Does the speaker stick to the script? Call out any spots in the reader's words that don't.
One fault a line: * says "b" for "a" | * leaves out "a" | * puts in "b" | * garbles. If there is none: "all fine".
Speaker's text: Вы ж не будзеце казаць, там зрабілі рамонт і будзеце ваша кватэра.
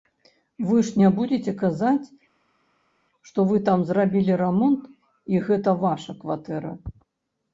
* puts in "што вы"
* says "гэта" for "будзеце"